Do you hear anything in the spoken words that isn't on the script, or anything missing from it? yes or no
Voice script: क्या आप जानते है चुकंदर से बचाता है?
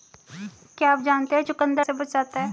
no